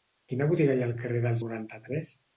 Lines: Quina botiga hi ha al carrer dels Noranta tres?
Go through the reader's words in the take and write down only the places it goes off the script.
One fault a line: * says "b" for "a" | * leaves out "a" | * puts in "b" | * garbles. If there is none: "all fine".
all fine